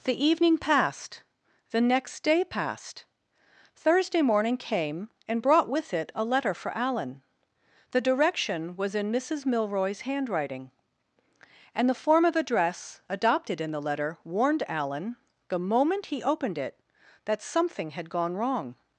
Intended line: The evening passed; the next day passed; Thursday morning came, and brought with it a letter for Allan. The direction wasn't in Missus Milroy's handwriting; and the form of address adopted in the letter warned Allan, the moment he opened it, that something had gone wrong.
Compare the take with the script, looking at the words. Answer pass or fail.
fail